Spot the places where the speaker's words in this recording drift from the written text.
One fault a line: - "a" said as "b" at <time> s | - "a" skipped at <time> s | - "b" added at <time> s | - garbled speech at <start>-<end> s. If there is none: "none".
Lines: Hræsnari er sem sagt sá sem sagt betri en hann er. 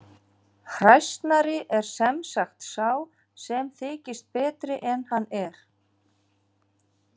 - "sagt" said as "þykist" at 3.8 s